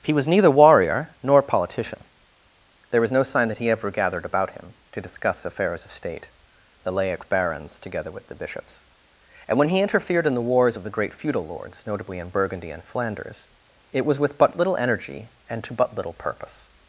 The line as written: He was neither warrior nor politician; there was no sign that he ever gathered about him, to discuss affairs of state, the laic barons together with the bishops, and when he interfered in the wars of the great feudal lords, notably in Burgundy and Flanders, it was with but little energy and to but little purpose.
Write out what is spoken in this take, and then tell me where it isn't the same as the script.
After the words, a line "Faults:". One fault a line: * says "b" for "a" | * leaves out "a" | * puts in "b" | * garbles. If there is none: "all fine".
He was neither warrior nor politician; there was no sign that he ever gathered about him, to discuss affairs of state, the laic barons together with the bishops, and when he interfered in the wars of the great feudal lords, notably in Burgundy and Flanders, it was with but little energy and to but little purpose.
Faults:
all fine